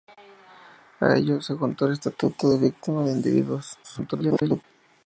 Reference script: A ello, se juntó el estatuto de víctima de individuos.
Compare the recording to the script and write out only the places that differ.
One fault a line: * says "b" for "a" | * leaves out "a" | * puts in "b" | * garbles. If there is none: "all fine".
* garbles